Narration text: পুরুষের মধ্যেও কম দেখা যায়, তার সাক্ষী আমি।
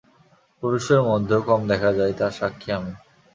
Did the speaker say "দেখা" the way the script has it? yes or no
yes